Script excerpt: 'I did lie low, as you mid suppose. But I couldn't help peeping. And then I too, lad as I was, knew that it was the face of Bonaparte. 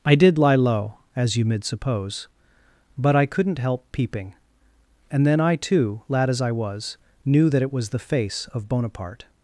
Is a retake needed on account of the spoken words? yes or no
no